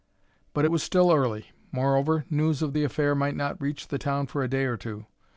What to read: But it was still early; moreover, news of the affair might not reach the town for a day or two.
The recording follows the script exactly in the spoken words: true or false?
true